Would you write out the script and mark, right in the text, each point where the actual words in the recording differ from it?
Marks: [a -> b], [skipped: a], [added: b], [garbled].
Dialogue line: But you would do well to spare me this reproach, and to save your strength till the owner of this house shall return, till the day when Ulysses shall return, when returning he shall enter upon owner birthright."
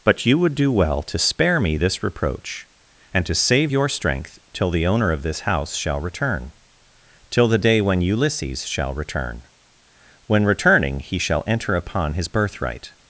But you would do well to spare me this reproach, and to save your strength till the owner of this house shall return, till the day when Ulysses shall return, when returning he shall enter upon [owner -> his] birthright."